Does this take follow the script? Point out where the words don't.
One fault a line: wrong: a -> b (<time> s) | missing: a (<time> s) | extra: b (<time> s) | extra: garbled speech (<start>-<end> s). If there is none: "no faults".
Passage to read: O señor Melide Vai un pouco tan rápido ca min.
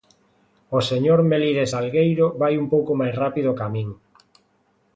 extra: Salgueiro (1.7 s)
wrong: tan -> máis (3.0 s)